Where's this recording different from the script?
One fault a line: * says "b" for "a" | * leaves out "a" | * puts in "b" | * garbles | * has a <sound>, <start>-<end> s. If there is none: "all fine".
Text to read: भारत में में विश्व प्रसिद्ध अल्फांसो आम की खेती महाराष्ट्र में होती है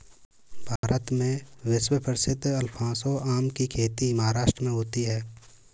* has a dropout, 0.8-0.8 s
* leaves out "में"